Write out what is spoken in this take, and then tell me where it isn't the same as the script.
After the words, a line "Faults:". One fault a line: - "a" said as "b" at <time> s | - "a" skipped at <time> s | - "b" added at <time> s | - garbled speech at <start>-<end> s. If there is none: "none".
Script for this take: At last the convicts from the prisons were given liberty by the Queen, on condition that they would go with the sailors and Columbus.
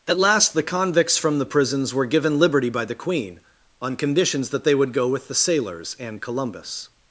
At last the convicts from the prisons were given liberty by the Queen, on conditions that they would go with the sailors and Columbus.
Faults:
- "condition" said as "conditions" at 4.0 s